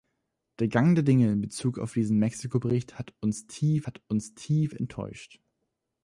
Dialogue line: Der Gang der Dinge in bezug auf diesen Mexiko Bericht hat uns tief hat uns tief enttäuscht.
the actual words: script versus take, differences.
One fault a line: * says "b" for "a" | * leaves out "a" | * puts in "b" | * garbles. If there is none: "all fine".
all fine